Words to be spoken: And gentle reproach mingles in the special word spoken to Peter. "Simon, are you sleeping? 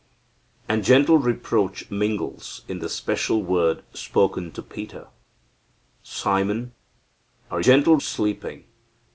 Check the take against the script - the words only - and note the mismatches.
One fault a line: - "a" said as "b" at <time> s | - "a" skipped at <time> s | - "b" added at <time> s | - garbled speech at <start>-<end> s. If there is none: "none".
- "you" said as "gentle" at 7.6 s